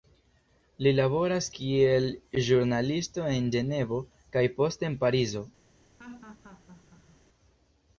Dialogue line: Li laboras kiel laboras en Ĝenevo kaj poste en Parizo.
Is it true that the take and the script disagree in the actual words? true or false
true